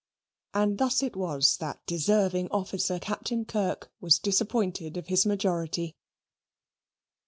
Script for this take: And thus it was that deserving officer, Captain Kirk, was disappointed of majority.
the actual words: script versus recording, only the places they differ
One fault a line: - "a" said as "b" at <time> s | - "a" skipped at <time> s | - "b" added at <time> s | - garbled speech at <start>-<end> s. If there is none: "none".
- "his" added at 5.1 s